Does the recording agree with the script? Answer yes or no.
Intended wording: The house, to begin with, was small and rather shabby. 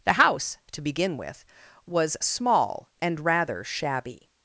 yes